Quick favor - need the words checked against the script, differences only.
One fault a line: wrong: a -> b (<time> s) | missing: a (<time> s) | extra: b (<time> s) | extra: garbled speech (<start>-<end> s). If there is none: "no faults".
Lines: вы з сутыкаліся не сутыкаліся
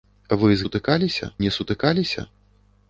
no faults